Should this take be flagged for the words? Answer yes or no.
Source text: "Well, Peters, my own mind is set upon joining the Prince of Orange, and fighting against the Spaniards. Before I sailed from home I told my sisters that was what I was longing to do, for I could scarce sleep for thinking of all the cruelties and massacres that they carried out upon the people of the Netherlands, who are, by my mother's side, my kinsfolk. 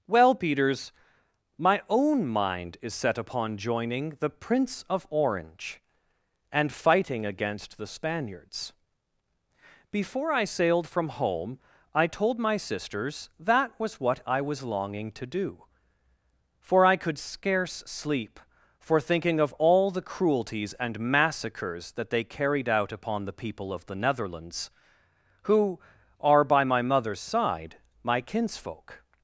no